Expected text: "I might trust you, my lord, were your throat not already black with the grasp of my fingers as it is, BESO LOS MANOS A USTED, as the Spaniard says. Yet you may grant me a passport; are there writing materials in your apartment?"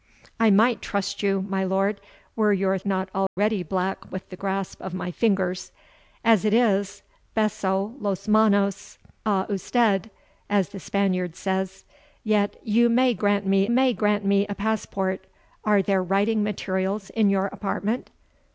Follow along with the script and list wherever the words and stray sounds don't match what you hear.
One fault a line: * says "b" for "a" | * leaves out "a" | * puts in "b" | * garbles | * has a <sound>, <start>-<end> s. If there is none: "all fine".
* leaves out "throat"
* has a dropout, 3.3-3.4 s
* puts in "may grant me"